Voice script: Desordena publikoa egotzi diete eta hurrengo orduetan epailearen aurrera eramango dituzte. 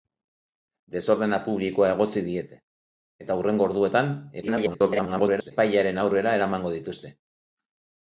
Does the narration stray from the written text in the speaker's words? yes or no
yes